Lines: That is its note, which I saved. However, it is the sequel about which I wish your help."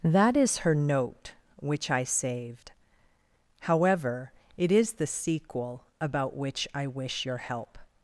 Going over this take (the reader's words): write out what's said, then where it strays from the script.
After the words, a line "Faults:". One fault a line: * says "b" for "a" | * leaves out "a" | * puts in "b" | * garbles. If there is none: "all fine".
That is her note, which I saved. However, it is the sequel about which I wish your help."
Faults:
* says "her" for "its"